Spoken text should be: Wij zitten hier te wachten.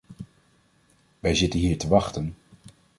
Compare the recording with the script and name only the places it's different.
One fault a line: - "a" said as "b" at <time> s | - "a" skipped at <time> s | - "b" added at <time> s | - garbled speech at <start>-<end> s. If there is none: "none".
none